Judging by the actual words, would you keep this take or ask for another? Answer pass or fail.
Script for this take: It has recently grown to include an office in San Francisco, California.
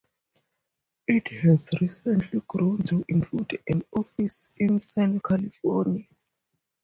fail